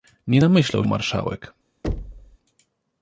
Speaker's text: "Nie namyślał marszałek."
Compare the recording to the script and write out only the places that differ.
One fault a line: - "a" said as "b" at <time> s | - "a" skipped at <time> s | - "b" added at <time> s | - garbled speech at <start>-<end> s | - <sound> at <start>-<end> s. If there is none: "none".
- thud at 1.8-2.4 s